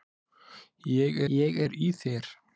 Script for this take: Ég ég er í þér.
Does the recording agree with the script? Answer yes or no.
yes